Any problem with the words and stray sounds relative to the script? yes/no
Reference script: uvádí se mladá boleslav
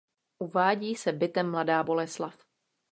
yes